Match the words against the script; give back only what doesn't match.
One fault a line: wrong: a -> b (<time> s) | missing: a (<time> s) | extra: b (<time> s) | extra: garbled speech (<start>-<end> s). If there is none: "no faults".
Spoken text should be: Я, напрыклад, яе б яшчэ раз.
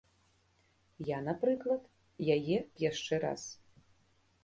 no faults